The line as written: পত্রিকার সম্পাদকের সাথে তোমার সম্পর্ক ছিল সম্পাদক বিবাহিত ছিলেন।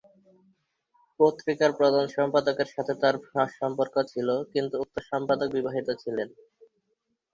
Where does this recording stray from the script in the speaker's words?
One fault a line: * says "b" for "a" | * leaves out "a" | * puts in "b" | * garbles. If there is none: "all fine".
* puts in "প্রধান"
* says "তার" for "তোমার"
* puts in "কিন্তু উক্ত"